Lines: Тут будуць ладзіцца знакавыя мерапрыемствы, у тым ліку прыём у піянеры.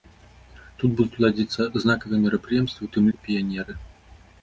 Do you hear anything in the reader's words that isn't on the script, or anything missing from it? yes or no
yes